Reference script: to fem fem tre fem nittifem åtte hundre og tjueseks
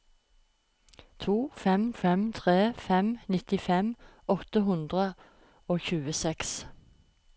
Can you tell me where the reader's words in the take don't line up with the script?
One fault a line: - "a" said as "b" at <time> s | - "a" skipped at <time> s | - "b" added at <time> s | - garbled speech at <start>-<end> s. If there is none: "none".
none